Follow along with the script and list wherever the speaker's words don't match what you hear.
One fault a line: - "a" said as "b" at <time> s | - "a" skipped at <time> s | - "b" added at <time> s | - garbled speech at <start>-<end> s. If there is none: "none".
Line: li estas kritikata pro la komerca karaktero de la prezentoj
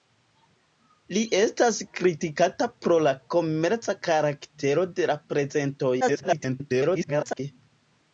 - garbled speech at 6.0-7.4 s